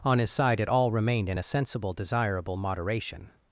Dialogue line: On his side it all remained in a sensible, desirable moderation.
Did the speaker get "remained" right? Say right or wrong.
right